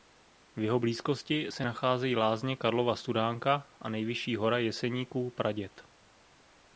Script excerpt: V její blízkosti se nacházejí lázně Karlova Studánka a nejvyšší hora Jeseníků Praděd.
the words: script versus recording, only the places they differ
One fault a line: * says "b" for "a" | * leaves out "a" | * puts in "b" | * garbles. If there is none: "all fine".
* says "jeho" for "její"